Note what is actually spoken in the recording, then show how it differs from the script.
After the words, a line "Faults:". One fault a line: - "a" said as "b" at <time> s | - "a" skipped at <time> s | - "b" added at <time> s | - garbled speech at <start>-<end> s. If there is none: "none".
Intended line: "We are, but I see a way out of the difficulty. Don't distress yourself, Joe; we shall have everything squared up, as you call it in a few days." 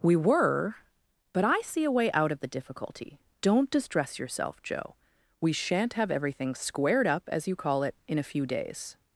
"We were, but I see a way out of the difficulty. Don't distress yourself, Joe; we shan't have everything squared up, as you call it in a few days."
Faults:
- "are" said as "were" at 0.1 s
- "shall" said as "shan't" at 5.5 s